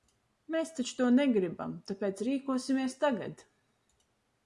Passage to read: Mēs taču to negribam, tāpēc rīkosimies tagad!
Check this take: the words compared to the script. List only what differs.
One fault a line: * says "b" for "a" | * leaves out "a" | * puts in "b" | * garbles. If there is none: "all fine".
all fine